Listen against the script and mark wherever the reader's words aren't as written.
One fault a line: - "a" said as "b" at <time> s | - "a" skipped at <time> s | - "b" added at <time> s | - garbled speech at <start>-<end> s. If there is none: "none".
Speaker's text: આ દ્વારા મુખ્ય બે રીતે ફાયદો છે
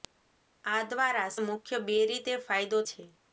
none